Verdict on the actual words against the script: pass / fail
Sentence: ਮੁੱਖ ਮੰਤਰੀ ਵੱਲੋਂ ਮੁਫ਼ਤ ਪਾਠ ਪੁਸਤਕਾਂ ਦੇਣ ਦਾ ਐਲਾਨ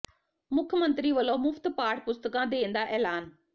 pass